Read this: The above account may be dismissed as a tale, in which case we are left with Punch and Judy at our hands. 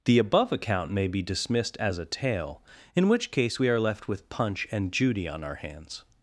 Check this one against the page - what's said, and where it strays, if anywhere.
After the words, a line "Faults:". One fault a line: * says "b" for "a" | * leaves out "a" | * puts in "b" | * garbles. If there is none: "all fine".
The above account may be dismissed as a tale, in which case we are left with Punch and Judy on our hands.
Faults:
* says "on" for "at"